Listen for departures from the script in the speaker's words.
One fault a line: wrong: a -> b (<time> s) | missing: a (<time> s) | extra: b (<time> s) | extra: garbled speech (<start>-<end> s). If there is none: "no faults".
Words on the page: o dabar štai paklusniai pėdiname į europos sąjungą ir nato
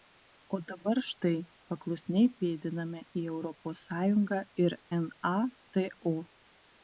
no faults